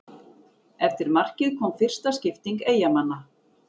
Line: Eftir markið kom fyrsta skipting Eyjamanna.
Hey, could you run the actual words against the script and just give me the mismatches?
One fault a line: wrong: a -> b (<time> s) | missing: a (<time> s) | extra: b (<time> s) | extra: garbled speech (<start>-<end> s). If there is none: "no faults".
no faults